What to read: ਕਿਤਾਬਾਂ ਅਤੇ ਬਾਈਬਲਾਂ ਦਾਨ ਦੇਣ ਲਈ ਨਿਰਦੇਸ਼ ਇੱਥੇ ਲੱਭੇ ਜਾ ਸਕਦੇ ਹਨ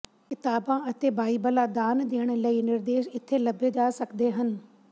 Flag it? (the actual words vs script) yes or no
no